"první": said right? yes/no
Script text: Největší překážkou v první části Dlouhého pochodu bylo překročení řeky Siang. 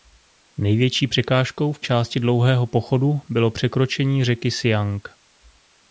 no